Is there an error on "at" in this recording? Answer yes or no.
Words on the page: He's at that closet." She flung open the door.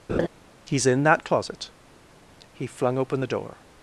yes